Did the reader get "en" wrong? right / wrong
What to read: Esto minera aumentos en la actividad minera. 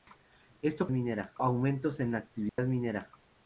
right